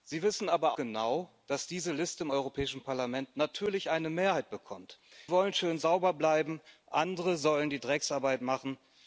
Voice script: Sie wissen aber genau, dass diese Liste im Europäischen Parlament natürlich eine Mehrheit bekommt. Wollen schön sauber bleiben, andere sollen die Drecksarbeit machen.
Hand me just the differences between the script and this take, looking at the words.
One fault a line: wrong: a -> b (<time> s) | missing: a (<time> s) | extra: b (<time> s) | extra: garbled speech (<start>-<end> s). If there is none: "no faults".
no faults